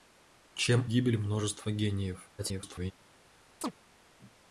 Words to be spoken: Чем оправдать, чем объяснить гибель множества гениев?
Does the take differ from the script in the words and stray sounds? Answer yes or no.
yes